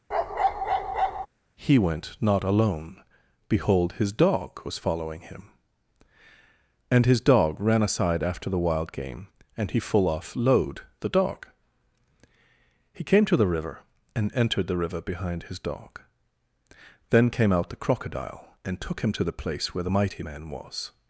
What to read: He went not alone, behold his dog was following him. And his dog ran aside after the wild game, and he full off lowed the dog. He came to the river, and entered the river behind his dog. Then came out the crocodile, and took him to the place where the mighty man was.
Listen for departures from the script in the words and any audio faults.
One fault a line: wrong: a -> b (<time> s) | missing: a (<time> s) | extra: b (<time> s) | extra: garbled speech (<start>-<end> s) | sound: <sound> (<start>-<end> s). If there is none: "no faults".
sound: bark (0.1-1.3 s)